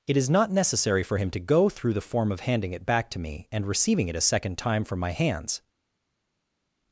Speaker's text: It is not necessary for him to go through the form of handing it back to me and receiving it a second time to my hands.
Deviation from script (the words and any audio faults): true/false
true